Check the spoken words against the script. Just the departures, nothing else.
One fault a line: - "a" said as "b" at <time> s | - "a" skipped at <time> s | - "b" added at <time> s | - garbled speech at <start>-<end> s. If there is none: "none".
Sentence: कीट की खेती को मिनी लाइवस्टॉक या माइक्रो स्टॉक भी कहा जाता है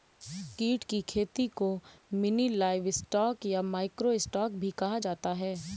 none